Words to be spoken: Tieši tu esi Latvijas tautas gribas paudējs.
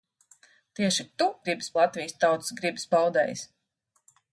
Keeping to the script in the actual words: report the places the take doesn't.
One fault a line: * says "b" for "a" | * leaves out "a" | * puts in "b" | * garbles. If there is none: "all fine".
* says "gribas" for "esi"